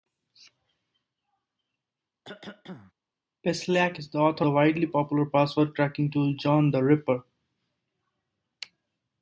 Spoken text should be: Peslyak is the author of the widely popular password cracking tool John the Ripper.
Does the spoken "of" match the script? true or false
false